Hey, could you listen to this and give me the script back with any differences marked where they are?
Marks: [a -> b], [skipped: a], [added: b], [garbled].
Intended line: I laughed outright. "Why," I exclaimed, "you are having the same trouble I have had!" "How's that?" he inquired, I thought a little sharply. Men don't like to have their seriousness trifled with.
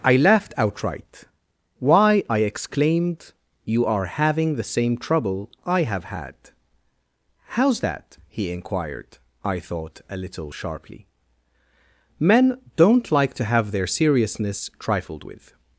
I laughed outright. "Why," I exclaimed, "you are having the same trouble I have had!" "How's that?" he inquired, I thought a little sharply. Men don't like to have their seriousness trifled with.